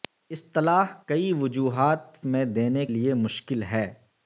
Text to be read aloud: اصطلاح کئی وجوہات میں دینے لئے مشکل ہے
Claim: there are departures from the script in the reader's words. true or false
false